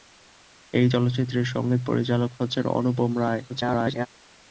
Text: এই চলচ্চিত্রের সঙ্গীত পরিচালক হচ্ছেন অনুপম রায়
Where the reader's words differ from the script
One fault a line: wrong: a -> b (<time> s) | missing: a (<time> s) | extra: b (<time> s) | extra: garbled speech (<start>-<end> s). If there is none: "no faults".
extra: garbled speech (3.5-4.1 s)